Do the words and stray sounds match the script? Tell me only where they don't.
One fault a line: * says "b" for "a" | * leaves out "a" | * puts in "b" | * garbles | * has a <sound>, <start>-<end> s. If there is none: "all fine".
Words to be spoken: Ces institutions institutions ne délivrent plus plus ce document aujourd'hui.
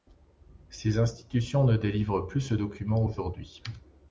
* leaves out "institutions"
* leaves out "plus"